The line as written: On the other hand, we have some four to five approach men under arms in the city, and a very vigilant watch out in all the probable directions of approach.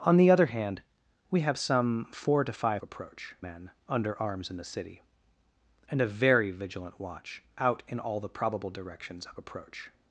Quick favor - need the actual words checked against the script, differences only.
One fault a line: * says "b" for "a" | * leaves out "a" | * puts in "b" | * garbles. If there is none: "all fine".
all fine